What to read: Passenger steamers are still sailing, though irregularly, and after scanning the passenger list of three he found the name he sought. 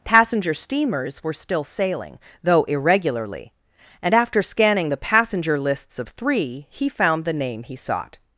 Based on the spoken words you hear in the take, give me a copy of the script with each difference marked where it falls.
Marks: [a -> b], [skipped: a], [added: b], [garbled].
Passenger steamers [are -> were] still sailing, though irregularly, and after scanning the passenger [list -> lists] of three he found the name he sought.